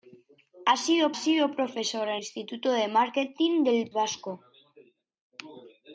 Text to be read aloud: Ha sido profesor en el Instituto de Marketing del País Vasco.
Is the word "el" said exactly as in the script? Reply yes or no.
no